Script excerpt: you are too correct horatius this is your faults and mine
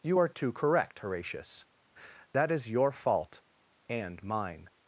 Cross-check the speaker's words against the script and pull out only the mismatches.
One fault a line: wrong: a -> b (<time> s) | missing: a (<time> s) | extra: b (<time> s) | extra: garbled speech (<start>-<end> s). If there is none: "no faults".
wrong: this -> that (2.3 s)
wrong: faults -> fault (2.9 s)